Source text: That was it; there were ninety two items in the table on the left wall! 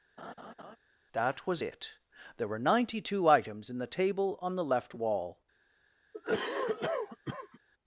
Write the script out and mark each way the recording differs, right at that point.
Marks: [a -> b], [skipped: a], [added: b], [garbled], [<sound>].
[laugh] That was it; there were ninety two items in the table on the left wall! [cough]